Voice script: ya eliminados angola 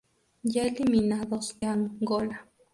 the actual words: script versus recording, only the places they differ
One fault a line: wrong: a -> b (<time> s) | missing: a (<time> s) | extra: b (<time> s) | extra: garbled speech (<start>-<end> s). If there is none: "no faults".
no faults